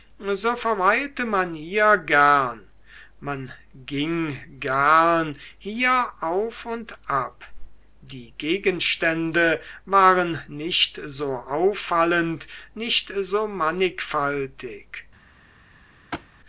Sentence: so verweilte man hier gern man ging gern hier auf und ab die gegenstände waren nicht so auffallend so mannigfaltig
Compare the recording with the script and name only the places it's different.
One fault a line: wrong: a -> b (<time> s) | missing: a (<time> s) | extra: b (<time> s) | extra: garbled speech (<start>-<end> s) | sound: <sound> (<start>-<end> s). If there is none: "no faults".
extra: nicht (12.7 s)
sound: thud (16.1-16.3 s)